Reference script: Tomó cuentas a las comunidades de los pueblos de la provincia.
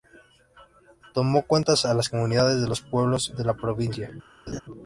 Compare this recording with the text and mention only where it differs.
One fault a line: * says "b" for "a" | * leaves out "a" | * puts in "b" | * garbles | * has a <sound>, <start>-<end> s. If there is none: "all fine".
* has a laugh, 4.5-4.6 s